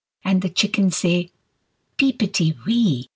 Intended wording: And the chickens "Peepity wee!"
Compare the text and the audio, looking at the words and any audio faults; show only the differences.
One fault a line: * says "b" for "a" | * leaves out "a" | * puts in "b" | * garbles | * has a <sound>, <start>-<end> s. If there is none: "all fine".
* puts in "say"